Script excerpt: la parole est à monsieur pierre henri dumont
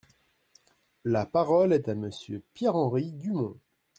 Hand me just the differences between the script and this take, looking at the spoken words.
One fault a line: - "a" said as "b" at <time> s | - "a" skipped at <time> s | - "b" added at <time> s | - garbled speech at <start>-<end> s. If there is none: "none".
none